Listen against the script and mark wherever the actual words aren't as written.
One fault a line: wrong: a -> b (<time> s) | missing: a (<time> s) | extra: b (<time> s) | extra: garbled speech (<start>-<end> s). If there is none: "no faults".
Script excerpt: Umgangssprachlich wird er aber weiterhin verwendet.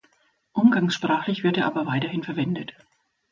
no faults